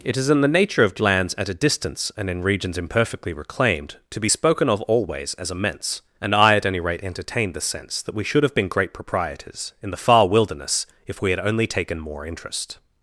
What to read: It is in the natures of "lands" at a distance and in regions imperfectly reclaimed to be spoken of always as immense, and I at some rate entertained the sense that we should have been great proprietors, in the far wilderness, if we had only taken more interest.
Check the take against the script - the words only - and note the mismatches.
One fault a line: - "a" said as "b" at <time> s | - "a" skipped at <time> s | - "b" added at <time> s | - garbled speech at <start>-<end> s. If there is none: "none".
- "natures" said as "nature" at 0.5 s
- "some" said as "any" at 6.6 s